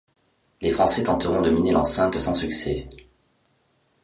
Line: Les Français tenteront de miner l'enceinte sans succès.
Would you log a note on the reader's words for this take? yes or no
no